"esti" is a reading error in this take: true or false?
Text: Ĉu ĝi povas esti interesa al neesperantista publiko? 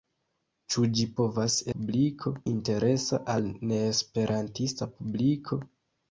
true